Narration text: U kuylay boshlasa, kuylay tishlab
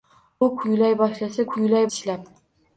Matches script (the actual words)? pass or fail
pass